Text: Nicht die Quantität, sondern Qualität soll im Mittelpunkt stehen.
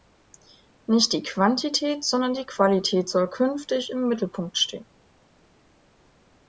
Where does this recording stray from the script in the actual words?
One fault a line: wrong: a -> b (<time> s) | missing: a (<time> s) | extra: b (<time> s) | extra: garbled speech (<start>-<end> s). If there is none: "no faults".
extra: die (2.3 s)
extra: künftig (3.3 s)